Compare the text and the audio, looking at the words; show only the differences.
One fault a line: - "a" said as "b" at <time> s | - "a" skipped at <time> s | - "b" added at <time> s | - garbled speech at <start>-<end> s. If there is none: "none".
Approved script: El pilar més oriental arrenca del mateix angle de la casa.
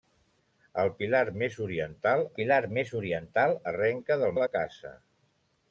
- "pilar més oriental" added at 2.4 s
- "mateix angle" skipped at 4.4 s